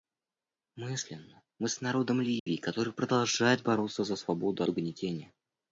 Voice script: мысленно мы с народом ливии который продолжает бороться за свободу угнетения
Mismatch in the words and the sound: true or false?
true